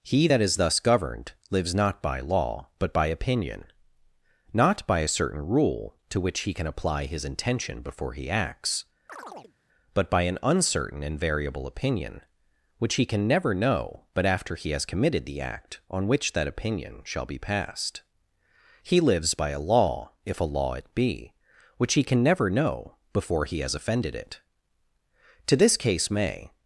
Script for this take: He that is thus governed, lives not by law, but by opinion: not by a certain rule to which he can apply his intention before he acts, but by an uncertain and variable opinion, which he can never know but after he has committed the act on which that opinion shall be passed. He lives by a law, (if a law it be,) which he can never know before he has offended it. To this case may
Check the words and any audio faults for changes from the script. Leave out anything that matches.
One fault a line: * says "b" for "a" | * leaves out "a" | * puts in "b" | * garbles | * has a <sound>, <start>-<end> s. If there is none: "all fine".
* has a chirp, 9.1-9.5 s